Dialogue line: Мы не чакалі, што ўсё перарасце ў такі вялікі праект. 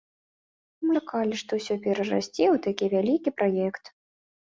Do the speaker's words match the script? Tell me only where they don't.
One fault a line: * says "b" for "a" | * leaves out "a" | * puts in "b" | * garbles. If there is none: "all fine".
* leaves out "не"